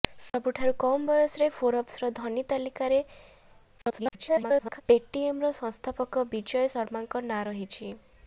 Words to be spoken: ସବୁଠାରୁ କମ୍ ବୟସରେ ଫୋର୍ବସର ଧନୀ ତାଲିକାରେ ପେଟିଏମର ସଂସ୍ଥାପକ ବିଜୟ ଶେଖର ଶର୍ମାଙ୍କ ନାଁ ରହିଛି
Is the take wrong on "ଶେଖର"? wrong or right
wrong